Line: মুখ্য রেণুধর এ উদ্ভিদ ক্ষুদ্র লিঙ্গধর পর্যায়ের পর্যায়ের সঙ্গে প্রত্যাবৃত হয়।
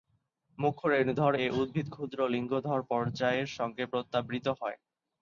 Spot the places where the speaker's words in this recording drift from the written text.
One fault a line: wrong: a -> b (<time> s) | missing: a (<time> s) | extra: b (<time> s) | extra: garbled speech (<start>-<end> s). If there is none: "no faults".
missing: পর্যায়ের (3.5 s)